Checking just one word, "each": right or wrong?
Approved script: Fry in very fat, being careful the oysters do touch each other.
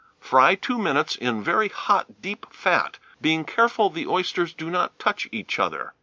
right